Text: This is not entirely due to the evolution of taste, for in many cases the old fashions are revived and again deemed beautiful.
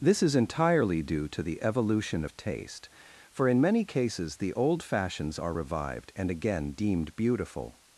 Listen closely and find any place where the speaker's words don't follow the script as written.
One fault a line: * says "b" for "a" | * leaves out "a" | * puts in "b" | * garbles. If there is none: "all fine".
* leaves out "not"